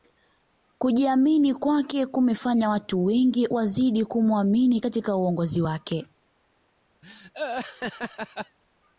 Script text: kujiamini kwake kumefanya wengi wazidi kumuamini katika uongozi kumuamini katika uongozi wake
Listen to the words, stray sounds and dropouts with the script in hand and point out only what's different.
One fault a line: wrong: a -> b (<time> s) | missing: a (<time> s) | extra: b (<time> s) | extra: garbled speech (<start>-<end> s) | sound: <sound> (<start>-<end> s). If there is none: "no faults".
extra: watu (2.7 s)
missing: kumuamini katika uongozi (5.6 s)
sound: laugh (7.0-8.6 s)